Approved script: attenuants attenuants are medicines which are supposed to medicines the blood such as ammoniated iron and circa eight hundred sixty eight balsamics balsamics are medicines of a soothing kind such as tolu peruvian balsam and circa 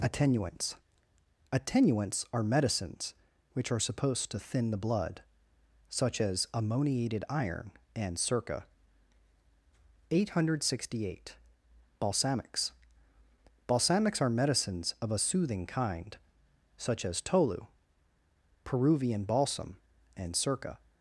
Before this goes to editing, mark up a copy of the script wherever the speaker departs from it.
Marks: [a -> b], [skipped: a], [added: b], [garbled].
attenuants attenuants are medicines which are supposed to [medicines -> thin] the blood such as ammoniated iron and circa eight hundred sixty eight balsamics balsamics are medicines of a soothing kind such as tolu peruvian balsam and circa